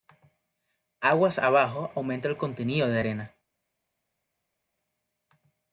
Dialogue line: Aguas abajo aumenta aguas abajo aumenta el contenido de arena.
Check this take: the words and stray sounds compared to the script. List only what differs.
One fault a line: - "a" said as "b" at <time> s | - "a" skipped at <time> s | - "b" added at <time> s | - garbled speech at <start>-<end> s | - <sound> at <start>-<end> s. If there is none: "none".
- "aguas abajo aumenta" skipped at 2.3 s